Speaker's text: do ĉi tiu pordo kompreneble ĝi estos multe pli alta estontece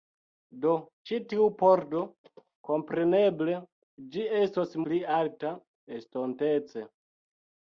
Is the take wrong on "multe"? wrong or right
wrong